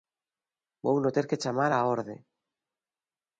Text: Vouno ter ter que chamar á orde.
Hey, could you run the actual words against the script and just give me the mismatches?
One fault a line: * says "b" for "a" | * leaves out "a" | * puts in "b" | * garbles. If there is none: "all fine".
* leaves out "ter"